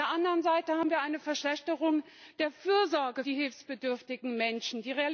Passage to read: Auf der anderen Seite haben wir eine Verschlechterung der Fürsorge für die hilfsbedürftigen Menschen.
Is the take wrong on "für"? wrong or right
wrong